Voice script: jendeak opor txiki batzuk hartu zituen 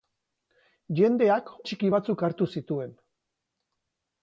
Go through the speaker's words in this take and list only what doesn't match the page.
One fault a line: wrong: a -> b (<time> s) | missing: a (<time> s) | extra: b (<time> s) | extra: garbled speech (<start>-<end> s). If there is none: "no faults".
missing: opor (1.5 s)